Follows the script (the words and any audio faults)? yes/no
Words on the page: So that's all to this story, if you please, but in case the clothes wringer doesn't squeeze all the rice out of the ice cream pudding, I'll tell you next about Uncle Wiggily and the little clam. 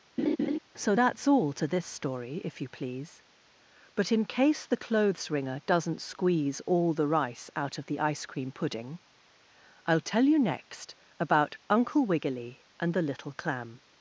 no